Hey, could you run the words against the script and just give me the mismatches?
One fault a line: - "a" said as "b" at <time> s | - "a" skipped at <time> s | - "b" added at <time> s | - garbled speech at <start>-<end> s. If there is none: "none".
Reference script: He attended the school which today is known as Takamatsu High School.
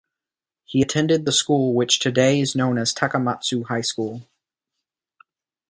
none